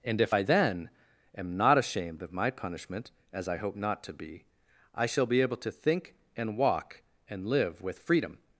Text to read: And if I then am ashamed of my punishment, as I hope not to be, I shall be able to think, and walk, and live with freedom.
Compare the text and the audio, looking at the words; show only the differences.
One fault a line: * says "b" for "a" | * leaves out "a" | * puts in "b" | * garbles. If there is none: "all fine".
* puts in "not"